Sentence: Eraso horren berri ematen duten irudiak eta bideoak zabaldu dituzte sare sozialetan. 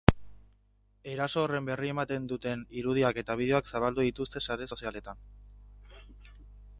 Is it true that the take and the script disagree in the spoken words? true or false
false